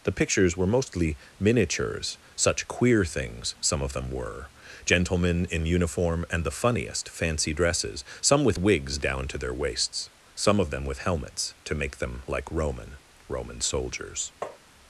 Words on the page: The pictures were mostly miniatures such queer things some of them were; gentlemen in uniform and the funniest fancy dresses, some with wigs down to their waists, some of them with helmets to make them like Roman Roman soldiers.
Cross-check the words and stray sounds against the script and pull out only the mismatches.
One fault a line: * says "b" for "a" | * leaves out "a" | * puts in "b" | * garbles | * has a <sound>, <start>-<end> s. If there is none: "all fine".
* has a tap, 14.4-14.6 s